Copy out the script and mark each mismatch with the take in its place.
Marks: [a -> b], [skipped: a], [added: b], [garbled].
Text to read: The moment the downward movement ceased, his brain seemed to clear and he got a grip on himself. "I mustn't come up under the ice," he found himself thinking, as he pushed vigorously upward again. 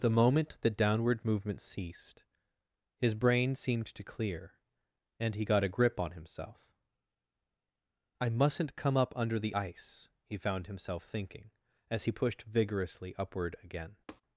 The moment the downward movement ceased, his brain seemed to clear and he got a grip on himself. "I mustn't come up under the ice," he found himself thinking, as he pushed vigorously upward again.